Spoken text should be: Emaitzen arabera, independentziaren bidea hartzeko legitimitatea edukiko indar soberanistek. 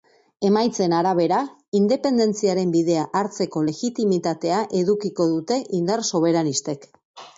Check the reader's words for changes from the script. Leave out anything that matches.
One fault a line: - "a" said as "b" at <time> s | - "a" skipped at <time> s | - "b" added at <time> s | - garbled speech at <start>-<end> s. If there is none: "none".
- "dute" added at 5.3 s